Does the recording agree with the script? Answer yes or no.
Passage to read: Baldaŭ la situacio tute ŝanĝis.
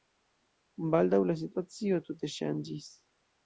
yes